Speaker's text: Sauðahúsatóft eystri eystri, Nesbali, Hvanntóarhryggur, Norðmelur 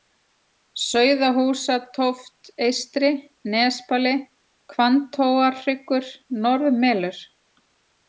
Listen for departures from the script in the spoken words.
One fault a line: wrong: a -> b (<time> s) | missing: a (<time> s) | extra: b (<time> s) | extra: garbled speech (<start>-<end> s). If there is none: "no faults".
missing: eystri (3.1 s)